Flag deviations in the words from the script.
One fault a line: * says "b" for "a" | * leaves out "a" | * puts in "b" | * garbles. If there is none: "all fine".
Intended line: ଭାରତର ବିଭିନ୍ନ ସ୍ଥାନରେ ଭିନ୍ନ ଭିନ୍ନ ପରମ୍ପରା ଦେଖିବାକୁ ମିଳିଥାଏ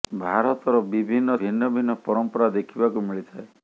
* leaves out "ସ୍ଥାନରେ"